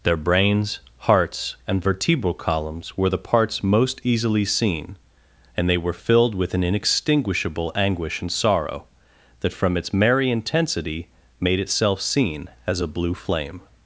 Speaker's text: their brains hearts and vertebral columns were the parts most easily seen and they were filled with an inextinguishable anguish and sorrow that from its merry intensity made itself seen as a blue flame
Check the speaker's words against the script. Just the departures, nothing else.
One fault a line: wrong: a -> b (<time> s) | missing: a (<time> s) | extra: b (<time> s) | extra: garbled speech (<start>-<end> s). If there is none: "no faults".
no faults